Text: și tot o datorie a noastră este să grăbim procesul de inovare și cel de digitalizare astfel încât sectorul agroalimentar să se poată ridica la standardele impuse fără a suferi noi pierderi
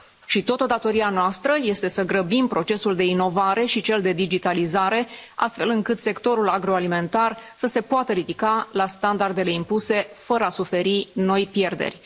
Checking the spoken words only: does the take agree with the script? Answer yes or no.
yes